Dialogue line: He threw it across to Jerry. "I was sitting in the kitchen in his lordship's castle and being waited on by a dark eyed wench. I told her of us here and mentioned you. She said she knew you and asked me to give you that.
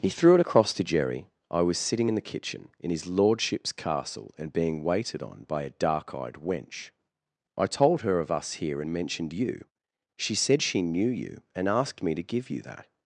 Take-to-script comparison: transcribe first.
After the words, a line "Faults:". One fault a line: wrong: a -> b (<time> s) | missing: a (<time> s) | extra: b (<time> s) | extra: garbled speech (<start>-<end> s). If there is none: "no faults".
He threw it across to Jerry. "I was sitting in the kitchen in his lordship's castle and being waited on by a dark eyed wench. I told her of us here and mentioned you. She said she knew you and asked me to give you that.
Faults:
no faults